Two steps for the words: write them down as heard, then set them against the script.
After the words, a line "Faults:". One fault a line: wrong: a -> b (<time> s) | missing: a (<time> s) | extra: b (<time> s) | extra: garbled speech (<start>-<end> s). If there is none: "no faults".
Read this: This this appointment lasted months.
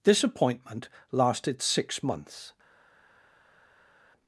This appointment lasted six months.
Faults:
missing: this (0.2 s)
extra: six (1.6 s)